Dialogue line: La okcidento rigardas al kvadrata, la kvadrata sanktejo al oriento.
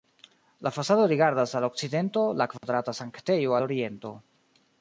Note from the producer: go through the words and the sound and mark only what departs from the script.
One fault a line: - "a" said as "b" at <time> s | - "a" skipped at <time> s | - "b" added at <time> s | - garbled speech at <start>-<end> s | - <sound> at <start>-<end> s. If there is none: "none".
- "okcidento" said as "fasado" at 0.7 s
- "kvadrata" said as "okcidento" at 1.6 s
- dropout at 2.6-2.6 s